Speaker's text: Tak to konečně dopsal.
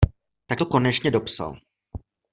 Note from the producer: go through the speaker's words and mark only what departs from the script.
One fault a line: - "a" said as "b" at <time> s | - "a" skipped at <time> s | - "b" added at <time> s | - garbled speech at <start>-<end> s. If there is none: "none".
none